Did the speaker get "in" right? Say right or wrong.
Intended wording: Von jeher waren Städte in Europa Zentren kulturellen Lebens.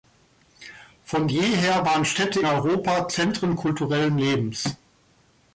wrong